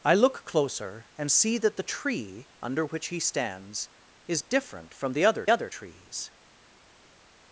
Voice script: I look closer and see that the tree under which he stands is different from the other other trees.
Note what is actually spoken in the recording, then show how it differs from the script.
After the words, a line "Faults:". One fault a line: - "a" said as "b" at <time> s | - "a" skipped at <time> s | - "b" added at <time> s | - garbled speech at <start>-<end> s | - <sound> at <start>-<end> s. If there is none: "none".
I look closer and see that the tree under which he stands is different from the other other trees.
Faults:
none